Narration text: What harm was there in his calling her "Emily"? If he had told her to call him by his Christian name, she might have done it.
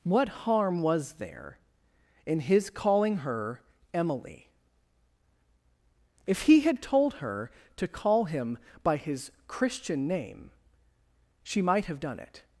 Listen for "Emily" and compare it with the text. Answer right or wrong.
right